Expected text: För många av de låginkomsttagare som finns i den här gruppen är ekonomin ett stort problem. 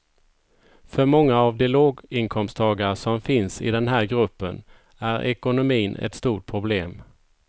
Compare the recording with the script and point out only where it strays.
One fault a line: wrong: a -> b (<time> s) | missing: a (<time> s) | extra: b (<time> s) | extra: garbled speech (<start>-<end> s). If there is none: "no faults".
no faults